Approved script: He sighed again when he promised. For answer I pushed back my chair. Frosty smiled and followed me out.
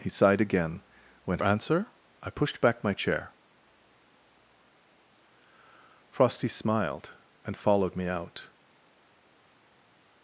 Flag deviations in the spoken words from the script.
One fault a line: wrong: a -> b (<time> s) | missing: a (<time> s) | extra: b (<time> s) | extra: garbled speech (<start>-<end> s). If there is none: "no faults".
missing: he promised For (1.4 s)